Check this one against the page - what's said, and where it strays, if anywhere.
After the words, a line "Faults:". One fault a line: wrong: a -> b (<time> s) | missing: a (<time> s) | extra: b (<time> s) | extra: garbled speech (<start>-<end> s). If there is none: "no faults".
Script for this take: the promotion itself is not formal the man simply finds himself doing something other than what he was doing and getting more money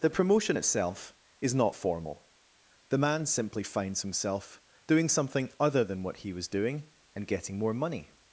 the promotion itself is not formal the man simply finds himself doing something other than what he was doing and getting more money
Faults:
no faults